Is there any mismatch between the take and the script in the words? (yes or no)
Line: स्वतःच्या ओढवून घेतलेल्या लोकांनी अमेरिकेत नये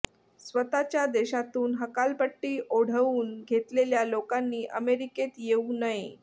yes